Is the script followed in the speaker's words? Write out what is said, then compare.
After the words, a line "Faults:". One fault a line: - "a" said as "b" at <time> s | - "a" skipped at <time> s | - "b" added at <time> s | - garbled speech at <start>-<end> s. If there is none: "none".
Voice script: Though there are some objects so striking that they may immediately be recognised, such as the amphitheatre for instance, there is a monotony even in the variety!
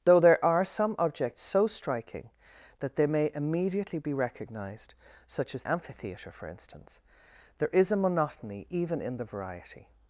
Though there are some objects so striking that they may immediately be recognised, such as amphitheatre for instance, there is a monotony even in the variety!
Faults:
- "the" skipped at 5.6 s